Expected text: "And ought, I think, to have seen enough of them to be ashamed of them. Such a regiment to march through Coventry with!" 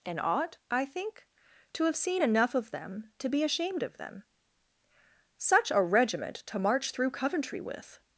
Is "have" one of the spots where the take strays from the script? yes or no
no